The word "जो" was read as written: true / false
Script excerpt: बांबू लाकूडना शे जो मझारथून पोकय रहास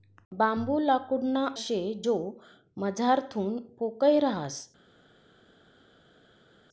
true